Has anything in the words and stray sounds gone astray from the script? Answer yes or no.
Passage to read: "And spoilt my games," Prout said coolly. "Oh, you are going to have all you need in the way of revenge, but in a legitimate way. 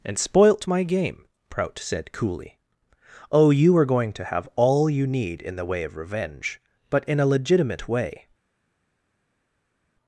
yes